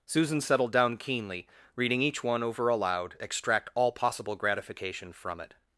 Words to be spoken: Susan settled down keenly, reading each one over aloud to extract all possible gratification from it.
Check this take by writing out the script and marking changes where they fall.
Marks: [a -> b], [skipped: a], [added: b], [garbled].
Susan settled down keenly, reading each one over aloud [skipped: to] extract all possible gratification from it.